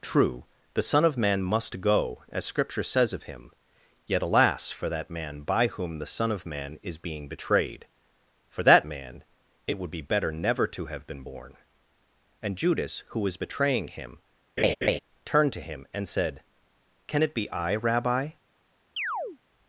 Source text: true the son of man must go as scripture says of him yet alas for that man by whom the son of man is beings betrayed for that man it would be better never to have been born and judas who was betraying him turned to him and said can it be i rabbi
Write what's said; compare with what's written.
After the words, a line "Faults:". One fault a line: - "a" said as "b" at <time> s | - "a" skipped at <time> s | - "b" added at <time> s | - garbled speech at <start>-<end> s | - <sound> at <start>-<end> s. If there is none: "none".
true the son of man must go as scripture says of him yet alas for that man by whom the son of man is being betrayed for that man it would be better never to have been born and judas who was betraying him turned to him and said can it be i rabbi
Faults:
- "beings" said as "being" at 7.0 s
- laugh at 14.6-15.0 s
- chirp at 19.0-19.4 s